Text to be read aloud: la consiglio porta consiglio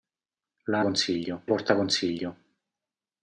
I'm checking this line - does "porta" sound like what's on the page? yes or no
yes